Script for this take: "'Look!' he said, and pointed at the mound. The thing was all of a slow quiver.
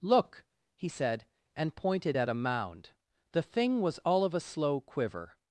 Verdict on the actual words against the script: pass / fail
fail